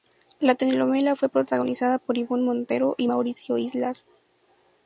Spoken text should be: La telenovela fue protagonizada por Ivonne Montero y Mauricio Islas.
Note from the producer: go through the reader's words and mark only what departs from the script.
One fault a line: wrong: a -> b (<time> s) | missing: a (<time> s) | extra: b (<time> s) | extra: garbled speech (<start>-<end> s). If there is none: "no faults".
no faults